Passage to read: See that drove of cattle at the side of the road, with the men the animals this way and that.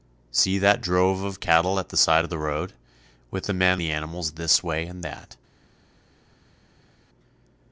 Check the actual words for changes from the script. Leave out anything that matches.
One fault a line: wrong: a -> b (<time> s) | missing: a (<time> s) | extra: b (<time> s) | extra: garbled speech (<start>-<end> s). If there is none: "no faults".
no faults